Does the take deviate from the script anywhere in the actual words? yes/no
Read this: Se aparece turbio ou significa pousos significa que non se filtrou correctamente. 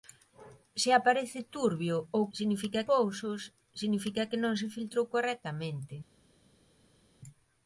no